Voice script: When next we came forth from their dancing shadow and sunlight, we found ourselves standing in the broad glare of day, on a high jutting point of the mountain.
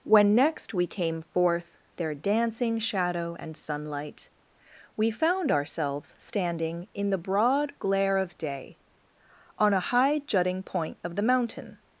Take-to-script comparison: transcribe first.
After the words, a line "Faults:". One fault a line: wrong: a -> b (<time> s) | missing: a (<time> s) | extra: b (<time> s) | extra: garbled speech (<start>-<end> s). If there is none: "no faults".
When next we came forth their dancing shadow and sunlight, we found ourselves standing in the broad glare of day, on a high jutting point of the mountain.
Faults:
missing: from (1.8 s)